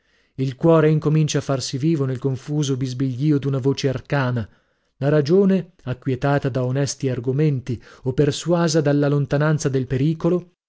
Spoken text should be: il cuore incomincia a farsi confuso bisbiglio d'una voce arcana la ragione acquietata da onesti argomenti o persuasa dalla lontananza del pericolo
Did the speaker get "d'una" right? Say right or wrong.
right